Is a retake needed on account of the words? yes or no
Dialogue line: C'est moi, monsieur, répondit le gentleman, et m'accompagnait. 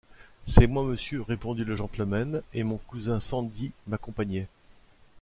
yes